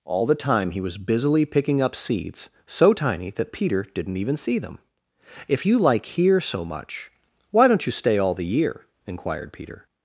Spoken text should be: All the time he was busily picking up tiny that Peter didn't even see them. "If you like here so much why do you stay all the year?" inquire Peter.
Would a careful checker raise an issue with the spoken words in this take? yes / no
yes